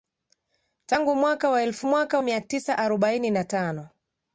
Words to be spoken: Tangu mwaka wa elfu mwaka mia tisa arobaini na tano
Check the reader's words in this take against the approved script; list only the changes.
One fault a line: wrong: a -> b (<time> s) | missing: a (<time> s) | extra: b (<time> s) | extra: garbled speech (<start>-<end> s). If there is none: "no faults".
no faults